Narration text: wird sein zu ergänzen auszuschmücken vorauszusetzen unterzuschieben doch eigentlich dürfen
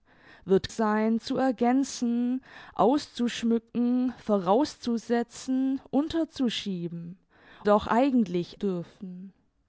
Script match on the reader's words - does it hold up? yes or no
yes